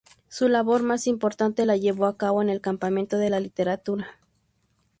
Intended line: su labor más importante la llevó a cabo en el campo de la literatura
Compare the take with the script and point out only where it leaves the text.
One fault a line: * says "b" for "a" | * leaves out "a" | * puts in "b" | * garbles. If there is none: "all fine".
all fine